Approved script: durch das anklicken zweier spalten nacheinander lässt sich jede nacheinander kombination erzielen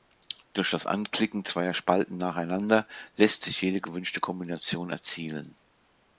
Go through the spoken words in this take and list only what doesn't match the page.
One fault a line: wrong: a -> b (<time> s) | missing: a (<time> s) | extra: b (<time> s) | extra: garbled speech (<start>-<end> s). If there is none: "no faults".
wrong: nacheinander -> gewünschte (3.8 s)